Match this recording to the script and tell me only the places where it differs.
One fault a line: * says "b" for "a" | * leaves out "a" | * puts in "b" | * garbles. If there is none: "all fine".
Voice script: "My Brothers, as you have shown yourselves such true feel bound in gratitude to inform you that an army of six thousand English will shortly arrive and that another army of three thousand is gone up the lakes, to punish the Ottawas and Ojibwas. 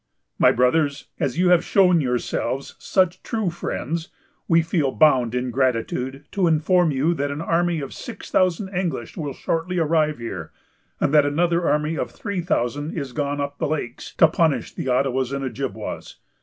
* puts in "friends we"
* puts in "here"